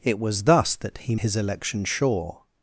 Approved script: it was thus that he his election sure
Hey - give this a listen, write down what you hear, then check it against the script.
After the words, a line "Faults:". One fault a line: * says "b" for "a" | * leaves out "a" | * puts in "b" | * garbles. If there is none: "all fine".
it was thus that he his election sure
Faults:
all fine